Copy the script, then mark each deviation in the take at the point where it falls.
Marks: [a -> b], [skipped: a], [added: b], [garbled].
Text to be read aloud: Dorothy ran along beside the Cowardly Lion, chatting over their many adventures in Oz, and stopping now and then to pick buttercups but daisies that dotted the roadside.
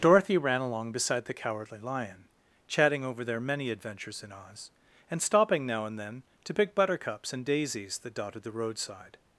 Dorothy ran along beside the Cowardly Lion, chatting over their many adventures in Oz, and stopping now and then to pick buttercups [but -> and] daisies that dotted the roadside.